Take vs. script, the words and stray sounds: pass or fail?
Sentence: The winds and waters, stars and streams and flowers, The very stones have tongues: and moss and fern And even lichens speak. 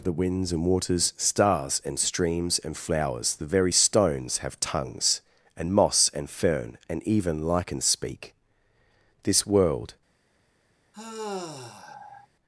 fail